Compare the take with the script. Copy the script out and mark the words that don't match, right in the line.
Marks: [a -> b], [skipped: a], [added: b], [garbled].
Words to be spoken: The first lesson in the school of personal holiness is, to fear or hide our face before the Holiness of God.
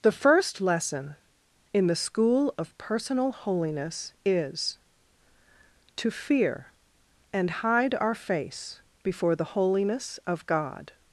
The first lesson in the school of personal holiness is, to fear [or -> and] hide our face before the Holiness of God.